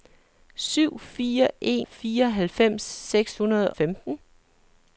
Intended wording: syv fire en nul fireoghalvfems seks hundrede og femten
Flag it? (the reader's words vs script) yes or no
yes